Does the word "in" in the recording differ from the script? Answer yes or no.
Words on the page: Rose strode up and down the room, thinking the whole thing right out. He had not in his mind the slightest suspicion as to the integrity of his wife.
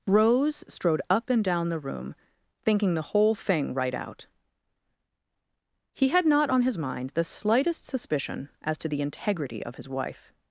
yes